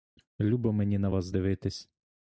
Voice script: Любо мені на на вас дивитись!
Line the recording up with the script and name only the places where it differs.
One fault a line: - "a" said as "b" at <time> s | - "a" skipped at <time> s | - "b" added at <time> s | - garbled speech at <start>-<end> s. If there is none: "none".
- "на" skipped at 1.1 s